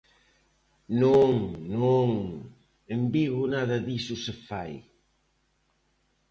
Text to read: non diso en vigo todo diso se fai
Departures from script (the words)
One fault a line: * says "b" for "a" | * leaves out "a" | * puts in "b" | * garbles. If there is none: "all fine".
* says "non" for "diso"
* says "nada" for "todo"